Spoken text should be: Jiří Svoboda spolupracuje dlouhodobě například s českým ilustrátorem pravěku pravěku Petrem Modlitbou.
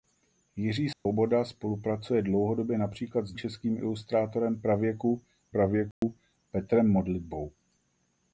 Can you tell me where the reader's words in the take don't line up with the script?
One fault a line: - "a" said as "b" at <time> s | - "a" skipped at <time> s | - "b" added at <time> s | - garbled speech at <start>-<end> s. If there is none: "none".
none